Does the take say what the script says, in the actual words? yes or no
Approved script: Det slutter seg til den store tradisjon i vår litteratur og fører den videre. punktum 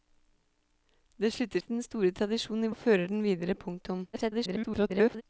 no